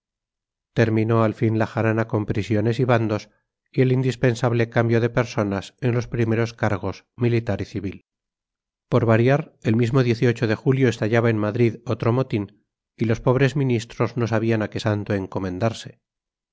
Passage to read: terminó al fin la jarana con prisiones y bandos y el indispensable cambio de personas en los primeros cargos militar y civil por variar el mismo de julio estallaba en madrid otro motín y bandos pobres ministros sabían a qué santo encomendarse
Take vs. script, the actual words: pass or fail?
fail